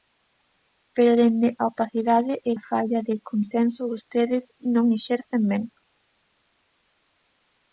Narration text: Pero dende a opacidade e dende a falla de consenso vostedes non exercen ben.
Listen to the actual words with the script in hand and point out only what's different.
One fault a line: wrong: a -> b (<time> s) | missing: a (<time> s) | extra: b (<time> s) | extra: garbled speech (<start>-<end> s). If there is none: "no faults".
missing: dende (2.5 s)